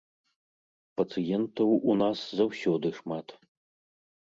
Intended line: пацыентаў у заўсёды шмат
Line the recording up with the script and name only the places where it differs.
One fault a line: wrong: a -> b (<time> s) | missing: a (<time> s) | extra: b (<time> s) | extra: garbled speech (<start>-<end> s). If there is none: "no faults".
extra: нас (2.0 s)